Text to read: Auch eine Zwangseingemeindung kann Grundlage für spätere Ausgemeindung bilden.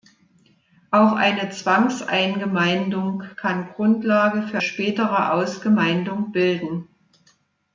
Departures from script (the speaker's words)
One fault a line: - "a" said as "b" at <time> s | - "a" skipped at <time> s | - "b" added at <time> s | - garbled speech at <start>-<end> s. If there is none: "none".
none